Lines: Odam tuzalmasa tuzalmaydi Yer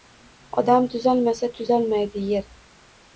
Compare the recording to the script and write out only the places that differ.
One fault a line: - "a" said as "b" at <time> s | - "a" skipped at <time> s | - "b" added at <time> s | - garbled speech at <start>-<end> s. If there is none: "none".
none